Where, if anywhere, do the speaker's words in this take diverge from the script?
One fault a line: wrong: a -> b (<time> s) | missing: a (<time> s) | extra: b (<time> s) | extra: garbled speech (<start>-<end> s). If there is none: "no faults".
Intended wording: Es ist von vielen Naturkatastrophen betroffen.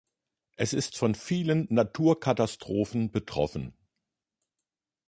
no faults